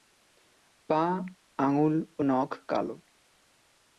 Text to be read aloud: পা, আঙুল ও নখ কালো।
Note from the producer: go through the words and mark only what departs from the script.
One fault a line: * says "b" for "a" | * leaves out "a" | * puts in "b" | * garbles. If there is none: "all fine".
all fine